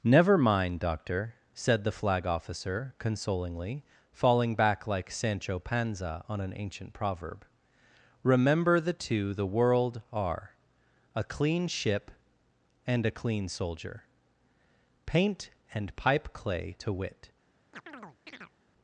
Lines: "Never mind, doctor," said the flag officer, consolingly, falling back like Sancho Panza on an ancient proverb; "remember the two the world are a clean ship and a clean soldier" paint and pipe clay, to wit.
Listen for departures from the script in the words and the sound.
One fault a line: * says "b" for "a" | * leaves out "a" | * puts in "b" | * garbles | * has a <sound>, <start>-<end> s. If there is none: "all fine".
* has a chirp, 17.7-18.5 s